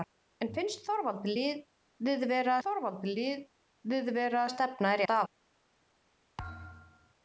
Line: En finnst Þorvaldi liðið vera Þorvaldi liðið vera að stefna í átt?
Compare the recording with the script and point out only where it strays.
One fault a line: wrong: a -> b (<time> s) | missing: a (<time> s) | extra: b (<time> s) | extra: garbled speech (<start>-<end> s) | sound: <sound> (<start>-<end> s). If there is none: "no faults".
sound: thud (6.4-7.1 s)